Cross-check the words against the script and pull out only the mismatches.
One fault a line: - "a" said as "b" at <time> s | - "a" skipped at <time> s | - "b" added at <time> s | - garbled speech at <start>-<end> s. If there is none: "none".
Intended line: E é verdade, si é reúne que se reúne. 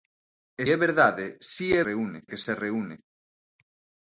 none